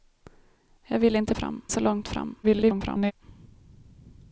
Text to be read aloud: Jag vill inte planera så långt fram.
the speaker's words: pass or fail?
fail